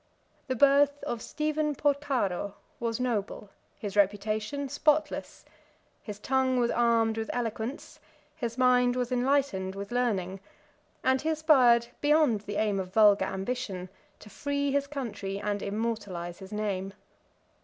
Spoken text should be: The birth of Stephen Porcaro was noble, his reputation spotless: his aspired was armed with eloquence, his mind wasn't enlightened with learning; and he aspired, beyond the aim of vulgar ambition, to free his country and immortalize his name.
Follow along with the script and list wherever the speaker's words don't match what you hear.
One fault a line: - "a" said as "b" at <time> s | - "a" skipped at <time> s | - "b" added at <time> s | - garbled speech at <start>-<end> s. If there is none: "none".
- "aspired" said as "tongue" at 6.2 s
- "wasn't" said as "was" at 8.9 s